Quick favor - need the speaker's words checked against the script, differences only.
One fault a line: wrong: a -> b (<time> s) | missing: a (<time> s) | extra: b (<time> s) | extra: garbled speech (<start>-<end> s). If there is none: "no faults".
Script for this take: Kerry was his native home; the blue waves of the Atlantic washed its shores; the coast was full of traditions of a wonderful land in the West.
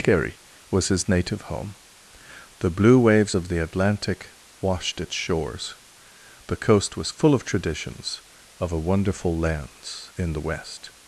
wrong: land -> lands (9.4 s)